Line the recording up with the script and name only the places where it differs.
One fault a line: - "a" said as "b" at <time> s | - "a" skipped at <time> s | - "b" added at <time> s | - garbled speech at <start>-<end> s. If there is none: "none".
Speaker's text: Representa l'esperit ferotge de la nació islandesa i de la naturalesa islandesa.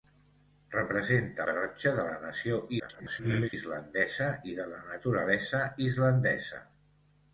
- "l'esperit" skipped at 1.4 s
- garbled speech at 2.8-3.5 s